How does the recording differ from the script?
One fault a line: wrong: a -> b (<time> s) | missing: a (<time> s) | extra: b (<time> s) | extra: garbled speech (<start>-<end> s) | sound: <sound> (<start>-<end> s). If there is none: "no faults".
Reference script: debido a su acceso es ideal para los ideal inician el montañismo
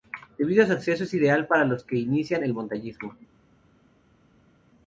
wrong: ideal -> que (1.8 s)